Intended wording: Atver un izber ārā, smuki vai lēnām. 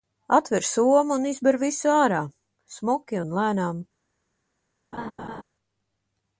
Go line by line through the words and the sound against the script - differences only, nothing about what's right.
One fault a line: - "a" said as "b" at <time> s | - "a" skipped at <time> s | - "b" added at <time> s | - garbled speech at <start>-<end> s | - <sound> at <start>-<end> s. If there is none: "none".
- "somu" added at 0.7 s
- "visu" added at 1.6 s
- "vai" said as "un" at 3.2 s
- laugh at 4.9-5.4 s